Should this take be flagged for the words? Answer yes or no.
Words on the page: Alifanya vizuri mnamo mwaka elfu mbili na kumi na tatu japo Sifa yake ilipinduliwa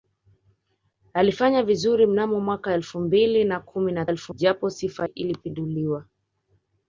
yes